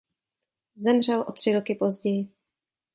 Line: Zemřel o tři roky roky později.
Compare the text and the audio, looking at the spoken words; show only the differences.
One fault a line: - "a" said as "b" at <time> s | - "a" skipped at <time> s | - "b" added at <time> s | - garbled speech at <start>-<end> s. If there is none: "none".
- "roky" skipped at 1.7 s